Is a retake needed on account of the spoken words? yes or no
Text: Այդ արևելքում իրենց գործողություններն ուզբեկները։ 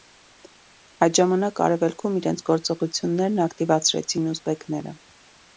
yes